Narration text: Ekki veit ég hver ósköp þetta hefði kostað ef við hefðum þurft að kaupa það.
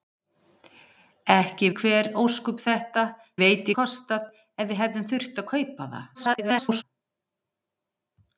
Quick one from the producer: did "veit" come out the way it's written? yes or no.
no